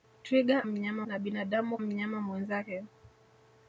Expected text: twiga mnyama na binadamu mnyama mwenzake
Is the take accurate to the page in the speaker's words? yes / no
yes